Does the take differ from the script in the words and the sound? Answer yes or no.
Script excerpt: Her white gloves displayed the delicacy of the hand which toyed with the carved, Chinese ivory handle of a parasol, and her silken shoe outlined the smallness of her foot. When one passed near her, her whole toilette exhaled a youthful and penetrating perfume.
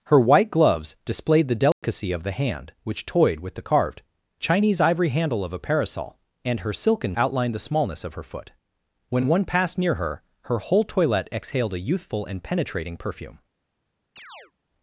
yes